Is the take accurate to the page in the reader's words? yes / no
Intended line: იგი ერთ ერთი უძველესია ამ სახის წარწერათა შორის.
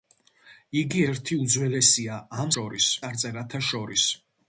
no